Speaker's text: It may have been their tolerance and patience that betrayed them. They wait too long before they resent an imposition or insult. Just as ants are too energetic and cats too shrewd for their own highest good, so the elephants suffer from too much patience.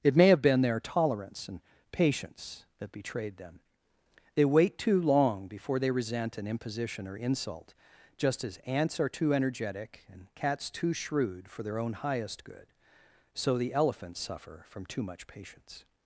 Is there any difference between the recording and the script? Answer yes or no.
no